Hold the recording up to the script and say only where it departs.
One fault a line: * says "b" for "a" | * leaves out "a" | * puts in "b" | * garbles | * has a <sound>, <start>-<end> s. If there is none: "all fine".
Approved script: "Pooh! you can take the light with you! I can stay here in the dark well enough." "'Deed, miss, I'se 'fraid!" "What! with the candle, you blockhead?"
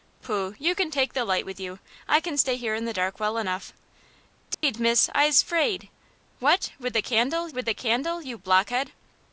* has a dropout, 4.5-4.6 s
* puts in "with the candle"